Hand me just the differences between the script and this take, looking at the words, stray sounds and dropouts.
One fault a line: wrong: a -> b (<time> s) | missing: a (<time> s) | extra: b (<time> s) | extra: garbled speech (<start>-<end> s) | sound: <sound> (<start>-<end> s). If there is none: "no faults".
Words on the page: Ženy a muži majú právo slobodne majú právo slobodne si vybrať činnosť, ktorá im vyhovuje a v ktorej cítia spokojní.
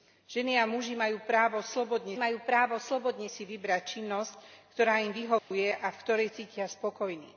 sound: dropout (5.4-5.5 s)